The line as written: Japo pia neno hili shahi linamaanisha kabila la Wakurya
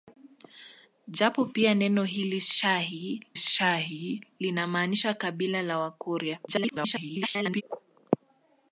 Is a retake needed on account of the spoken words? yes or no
yes